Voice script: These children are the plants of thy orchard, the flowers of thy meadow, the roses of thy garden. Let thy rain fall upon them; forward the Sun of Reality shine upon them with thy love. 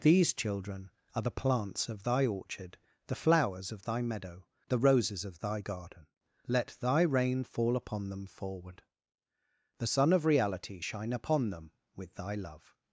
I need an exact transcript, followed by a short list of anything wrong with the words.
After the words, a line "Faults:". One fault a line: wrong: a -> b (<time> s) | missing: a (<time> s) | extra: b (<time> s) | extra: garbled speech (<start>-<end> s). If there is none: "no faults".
These children are the plants of thy orchard, the flowers of thy meadow, the roses of thy garden. Let thy rain fall upon them; forward the Sun of Reality shine upon them with thy love.
Faults:
no faults